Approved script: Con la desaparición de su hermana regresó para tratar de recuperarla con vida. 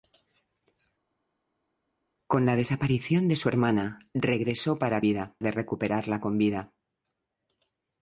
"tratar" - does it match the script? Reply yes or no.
no